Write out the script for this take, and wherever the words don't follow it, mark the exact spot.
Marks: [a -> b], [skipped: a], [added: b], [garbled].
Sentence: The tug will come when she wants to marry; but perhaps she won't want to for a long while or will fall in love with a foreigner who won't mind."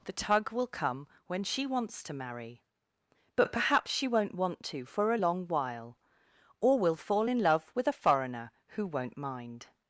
The tug will come when she wants to marry; but perhaps she won't want to for a long while or will fall in love with a foreigner who won't mind."